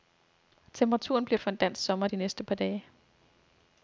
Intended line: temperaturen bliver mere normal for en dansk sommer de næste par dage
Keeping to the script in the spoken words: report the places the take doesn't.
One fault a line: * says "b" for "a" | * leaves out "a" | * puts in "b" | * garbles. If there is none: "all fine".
* leaves out "mere normal"